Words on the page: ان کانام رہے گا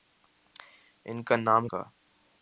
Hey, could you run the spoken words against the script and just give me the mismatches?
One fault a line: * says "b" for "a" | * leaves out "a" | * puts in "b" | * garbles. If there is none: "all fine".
* leaves out "رہے"